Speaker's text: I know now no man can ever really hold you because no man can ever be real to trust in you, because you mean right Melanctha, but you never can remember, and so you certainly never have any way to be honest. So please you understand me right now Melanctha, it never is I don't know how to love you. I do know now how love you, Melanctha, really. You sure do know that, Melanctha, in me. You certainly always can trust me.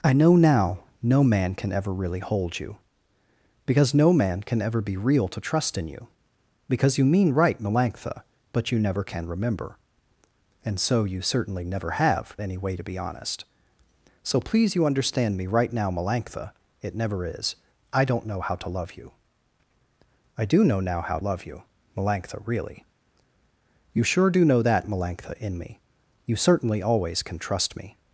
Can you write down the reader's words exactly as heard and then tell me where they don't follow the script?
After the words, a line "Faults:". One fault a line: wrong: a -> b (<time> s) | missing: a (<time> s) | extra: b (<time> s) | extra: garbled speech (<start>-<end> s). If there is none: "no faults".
I know now no man can ever really hold you because no man can ever be real to trust in you, because you mean right Melanctha, but you never can remember, and so you certainly never have any way to be honest. So please you understand me right now Melanctha, it never is I don't know how to love you. I do know now how love you, Melanctha, really. You sure do know that, Melanctha, in me. You certainly always can trust me.
Faults:
no faults